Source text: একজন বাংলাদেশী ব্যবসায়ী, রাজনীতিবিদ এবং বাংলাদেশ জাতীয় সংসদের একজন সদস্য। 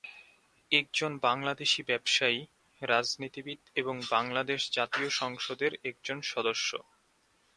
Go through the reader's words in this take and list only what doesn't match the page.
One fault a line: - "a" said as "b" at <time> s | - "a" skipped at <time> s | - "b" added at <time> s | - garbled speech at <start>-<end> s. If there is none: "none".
none